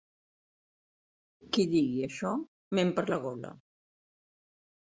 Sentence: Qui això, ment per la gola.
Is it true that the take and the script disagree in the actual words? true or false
true